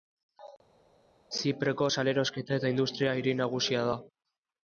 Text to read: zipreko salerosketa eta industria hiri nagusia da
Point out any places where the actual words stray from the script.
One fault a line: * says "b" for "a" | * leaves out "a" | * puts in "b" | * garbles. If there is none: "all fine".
all fine